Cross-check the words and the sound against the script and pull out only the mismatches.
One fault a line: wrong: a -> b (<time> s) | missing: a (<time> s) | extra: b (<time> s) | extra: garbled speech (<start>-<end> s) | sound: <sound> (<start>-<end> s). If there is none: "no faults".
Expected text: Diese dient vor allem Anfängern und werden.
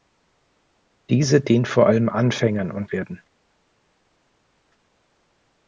no faults